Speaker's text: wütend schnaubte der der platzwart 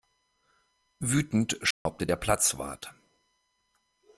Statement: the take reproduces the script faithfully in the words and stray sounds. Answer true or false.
false